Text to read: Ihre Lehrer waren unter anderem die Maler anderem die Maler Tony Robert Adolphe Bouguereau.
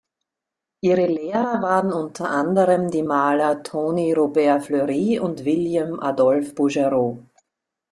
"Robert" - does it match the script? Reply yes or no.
no